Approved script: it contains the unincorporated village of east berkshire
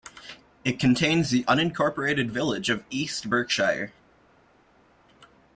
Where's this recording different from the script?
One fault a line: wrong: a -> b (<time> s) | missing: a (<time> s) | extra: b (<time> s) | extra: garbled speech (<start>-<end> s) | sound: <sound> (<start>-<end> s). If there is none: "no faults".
no faults